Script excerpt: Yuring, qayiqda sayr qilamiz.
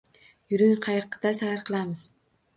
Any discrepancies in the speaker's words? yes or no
no